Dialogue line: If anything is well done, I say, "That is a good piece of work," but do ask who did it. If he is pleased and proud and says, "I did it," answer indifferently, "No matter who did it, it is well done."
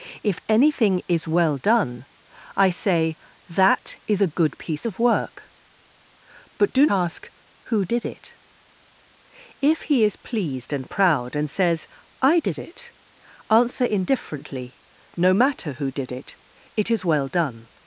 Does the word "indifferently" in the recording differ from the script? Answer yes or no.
no